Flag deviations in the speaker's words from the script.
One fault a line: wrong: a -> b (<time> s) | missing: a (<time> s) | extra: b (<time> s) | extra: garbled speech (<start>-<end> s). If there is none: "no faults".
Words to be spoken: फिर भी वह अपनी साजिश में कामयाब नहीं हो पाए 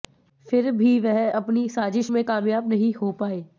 no faults